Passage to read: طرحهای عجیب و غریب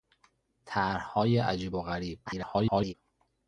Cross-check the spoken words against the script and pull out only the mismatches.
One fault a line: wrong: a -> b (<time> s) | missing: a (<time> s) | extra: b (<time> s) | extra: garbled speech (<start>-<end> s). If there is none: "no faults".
extra: garbled speech (2.3-2.9 s)